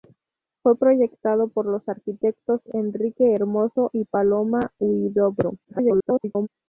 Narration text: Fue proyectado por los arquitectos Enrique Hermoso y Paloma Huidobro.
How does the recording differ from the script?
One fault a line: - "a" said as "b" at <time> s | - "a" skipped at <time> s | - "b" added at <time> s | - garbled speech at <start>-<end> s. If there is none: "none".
- garbled speech at 5.6-6.5 s